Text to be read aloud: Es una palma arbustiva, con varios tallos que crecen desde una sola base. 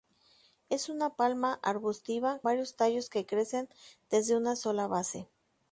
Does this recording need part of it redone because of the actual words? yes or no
yes